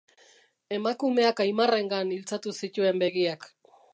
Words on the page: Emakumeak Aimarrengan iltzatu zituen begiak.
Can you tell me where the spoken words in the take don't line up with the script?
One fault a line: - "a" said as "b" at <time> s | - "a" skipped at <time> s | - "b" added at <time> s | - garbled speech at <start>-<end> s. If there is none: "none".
none